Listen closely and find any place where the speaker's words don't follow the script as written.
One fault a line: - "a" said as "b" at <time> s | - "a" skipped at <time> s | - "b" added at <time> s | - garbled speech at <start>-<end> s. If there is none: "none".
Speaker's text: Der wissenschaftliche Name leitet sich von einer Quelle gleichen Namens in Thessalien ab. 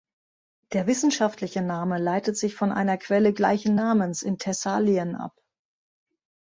none